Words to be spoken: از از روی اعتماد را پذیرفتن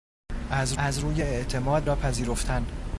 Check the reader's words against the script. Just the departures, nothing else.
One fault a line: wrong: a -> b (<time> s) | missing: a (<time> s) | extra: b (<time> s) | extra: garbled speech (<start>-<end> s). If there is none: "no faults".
no faults